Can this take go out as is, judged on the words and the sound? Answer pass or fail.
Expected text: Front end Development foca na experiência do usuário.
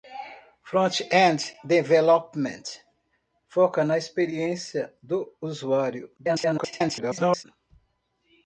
fail